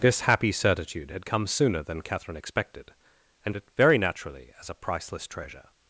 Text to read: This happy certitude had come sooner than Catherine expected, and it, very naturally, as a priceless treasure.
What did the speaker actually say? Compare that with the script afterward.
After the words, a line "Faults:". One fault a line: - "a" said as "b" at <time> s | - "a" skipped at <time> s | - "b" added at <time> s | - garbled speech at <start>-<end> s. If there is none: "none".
This happy certitude had come sooner than Catherine expected, and it, very naturally, as a priceless treasure.
Faults:
none